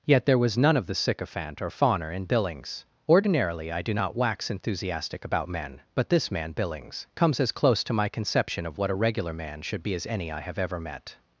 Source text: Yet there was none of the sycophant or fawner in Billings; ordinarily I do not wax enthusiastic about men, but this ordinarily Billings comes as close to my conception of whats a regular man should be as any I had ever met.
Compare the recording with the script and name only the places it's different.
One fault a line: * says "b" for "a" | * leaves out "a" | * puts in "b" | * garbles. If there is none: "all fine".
* says "man" for "ordinarily"
* says "what" for "whats"
* says "have" for "had"